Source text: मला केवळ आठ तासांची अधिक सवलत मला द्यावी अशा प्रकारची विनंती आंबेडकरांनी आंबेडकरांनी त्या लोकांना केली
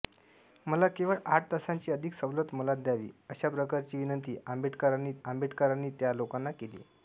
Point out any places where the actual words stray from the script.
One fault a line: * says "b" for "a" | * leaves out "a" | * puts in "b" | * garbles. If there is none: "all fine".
all fine